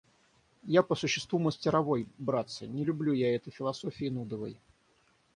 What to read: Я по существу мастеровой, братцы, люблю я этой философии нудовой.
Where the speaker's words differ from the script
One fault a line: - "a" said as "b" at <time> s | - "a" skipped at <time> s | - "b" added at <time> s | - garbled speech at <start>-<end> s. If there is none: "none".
- "не" added at 2.6 s